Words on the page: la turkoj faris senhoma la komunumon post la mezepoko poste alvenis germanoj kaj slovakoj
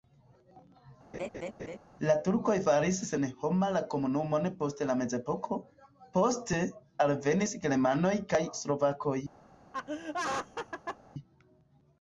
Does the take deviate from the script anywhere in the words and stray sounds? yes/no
yes